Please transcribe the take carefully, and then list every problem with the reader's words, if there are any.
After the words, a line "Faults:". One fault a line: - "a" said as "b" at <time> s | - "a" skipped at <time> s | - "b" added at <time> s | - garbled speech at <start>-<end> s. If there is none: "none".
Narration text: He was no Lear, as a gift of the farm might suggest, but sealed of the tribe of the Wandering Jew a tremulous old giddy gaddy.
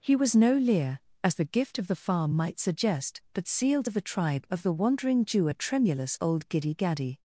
He was no Lear, as the gift of the farm might suggest, but sealed of the tribe of the Wandering Jew a tremulous old giddy gaddy.
Faults:
- "a" said as "the" at 1.4 s